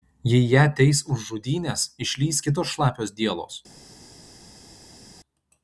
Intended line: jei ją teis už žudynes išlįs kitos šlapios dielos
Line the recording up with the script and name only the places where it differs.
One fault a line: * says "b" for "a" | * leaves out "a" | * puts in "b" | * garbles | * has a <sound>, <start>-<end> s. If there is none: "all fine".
all fine